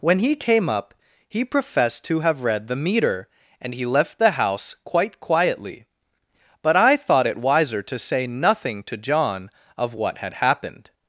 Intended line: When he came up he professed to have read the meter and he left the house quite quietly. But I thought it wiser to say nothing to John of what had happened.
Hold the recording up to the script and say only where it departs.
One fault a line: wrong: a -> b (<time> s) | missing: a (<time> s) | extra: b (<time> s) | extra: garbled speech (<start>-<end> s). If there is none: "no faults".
no faults